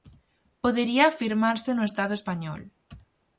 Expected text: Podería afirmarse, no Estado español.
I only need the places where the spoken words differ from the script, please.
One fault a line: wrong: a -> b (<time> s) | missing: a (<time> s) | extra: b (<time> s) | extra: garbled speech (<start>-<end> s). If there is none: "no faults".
no faults